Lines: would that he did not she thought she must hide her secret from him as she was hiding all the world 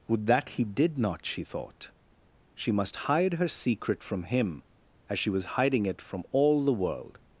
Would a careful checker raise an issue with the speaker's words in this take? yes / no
yes